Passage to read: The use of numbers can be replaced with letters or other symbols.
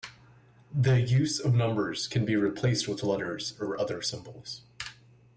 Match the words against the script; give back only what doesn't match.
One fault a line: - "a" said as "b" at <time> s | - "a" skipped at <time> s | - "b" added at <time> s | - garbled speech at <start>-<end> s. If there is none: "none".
none